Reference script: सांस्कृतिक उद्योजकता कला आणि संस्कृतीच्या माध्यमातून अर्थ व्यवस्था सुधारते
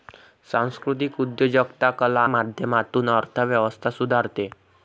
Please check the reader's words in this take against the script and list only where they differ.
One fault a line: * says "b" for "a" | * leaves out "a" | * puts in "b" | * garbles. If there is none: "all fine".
* leaves out "आणि संस्कृतीच्या"